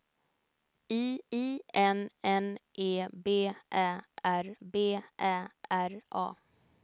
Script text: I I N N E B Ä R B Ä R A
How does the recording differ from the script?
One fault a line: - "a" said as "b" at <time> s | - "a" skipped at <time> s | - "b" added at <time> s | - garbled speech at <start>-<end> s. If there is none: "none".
none